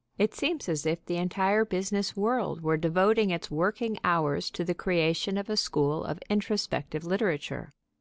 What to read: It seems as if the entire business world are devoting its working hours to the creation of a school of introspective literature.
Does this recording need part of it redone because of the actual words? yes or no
yes